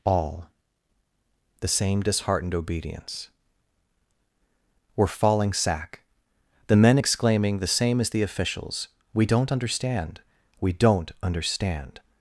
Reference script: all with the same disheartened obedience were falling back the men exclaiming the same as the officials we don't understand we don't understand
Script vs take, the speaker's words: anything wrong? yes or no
yes